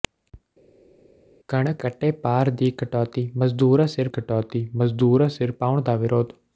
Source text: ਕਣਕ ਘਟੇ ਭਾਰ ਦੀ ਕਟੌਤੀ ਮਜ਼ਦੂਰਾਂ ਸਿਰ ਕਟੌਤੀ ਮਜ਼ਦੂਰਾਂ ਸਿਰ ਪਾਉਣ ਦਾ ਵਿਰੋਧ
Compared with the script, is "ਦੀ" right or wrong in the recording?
right